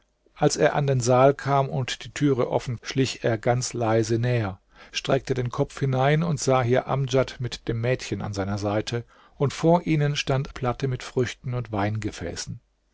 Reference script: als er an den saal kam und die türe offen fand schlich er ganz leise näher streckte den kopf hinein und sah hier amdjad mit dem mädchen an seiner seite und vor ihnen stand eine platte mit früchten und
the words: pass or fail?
fail